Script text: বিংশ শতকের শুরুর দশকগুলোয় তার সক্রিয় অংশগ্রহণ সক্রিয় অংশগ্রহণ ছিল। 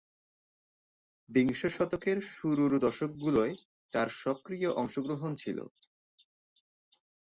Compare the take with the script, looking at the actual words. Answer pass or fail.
fail